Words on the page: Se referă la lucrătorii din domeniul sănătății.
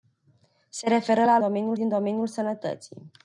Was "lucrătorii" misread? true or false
true